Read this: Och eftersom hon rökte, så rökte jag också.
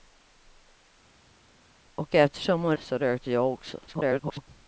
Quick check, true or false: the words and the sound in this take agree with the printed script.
false